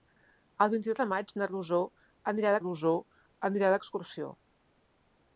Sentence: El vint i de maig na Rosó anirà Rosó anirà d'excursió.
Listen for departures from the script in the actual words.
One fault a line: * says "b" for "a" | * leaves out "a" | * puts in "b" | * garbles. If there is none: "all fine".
all fine